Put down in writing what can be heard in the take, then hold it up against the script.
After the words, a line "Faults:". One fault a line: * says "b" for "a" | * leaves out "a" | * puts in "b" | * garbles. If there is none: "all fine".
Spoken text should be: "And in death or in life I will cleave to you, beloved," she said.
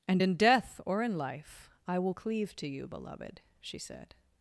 "And in death or in life I will cleave to you, beloved," she said.
Faults:
all fine